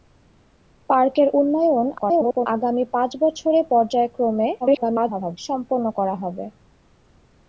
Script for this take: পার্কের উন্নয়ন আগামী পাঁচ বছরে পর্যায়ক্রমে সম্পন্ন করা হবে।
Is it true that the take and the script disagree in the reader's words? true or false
true